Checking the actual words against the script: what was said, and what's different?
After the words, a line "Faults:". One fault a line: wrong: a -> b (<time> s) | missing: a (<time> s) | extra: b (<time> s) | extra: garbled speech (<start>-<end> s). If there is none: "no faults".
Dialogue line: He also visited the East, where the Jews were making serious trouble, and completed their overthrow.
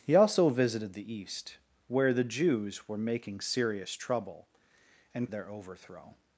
He also visited the East, where the Jews were making serious trouble, and their overthrow.
Faults:
missing: completed (5.3 s)